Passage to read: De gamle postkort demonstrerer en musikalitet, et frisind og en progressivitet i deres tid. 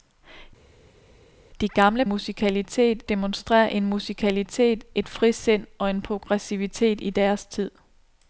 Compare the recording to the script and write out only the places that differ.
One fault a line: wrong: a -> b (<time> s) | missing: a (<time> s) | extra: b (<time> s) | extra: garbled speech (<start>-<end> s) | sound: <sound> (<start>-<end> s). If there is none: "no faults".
wrong: postkort -> musikalitet (2.0 s)